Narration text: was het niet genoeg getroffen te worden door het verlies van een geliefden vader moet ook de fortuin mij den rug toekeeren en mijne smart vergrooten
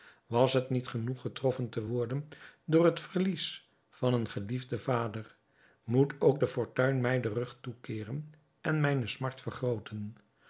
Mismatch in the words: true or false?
false